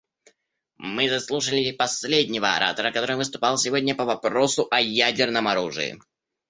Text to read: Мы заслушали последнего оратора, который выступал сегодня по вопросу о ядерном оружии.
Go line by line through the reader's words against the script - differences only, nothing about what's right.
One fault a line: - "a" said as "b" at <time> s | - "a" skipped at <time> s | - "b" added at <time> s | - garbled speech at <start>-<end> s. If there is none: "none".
none